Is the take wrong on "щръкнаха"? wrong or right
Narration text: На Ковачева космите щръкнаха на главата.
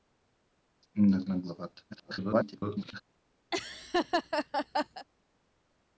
wrong